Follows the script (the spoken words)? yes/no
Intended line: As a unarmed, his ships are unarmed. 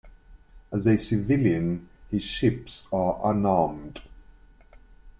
no